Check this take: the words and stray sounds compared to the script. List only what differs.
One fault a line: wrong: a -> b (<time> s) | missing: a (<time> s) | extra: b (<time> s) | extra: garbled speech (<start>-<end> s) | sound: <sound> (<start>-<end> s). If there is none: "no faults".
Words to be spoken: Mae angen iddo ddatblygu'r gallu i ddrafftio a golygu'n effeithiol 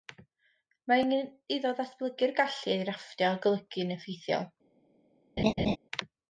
sound: laugh (5.4-5.8 s)